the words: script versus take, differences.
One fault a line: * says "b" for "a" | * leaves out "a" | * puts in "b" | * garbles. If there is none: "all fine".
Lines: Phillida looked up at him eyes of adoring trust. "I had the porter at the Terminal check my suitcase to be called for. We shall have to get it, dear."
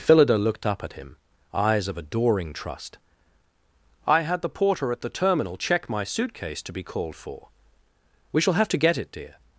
all fine